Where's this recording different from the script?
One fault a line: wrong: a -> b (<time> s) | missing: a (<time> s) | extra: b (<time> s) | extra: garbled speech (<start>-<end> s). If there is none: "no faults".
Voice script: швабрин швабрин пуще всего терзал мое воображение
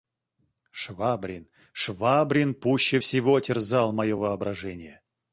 no faults